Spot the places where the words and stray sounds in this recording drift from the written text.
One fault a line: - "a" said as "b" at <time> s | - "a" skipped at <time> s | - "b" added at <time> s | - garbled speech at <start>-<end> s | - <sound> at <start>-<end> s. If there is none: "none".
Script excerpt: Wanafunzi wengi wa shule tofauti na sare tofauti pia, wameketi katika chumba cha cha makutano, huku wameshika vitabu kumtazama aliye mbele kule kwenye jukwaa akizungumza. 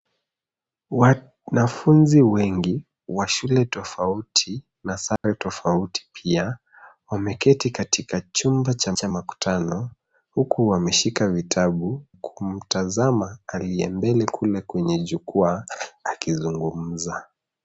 - dropout at 5.2-5.2 s